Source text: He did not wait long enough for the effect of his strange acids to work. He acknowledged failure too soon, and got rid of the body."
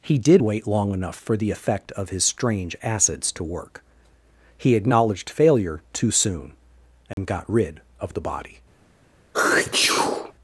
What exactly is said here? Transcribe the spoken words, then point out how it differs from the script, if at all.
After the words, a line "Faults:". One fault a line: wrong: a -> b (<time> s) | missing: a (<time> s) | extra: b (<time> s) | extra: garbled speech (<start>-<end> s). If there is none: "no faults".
He did wait long enough for the effect of his strange acids to work. He acknowledged failure too soon, and got rid of the body."
Faults:
missing: not (0.4 s)